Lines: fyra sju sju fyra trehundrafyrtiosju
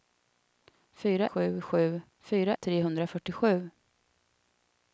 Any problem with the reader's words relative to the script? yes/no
no